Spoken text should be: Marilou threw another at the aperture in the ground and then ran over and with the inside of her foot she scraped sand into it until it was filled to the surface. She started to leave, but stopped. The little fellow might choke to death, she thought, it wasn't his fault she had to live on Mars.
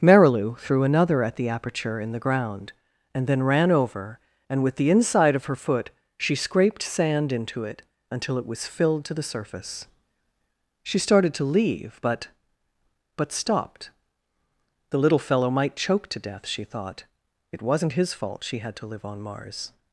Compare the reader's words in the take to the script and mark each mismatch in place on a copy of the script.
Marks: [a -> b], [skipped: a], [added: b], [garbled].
Marilou threw another at the aperture in the ground and then ran over and with the inside of her foot she scraped sand into it until it was filled to the surface. She started to leave, but [added: but] stopped. The little fellow might choke to death, she thought, it wasn't his fault she had to live on Mars.